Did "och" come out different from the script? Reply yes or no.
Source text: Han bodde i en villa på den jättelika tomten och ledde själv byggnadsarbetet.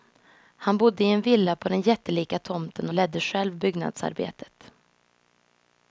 yes